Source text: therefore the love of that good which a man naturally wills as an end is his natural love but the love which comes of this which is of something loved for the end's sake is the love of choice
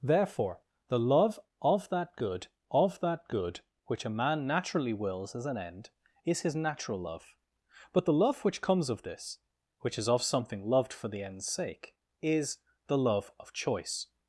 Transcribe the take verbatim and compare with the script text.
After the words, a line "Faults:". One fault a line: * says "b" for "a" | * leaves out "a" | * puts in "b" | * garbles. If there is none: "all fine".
therefore the love of that good of that good which a man naturally wills as an end is his natural love but the love which comes of this which is of something loved for the end's sake is the love of choice
Faults:
* puts in "of that good"